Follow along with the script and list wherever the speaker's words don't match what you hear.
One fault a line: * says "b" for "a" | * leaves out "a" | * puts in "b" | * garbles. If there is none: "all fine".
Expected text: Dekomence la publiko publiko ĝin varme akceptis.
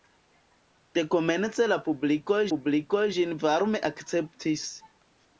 all fine